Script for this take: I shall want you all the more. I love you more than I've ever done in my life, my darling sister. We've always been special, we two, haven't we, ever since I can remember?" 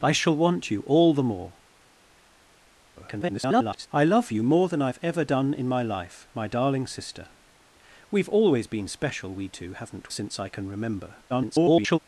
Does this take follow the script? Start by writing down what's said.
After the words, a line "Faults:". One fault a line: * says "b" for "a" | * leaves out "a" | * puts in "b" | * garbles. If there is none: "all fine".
I shall want you all the more. [garbled] I love you more than I've ever done in my life, my darling sister. We've always been special, we two, haven't since I can remember?" [garbled]
Faults:
* garbles
* leaves out "we ever"
* garbles